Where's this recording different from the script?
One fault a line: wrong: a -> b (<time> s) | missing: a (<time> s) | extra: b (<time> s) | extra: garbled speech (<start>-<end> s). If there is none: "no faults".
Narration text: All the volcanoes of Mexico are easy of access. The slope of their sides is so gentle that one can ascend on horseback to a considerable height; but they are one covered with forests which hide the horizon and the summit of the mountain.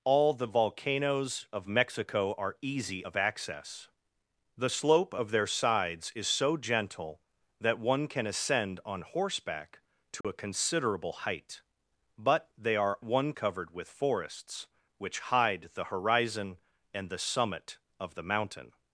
no faults